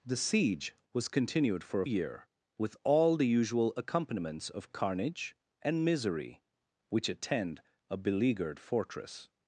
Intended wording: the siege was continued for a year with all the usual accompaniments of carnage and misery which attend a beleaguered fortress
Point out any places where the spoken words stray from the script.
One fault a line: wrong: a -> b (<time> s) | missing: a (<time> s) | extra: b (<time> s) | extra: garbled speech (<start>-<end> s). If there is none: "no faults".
no faults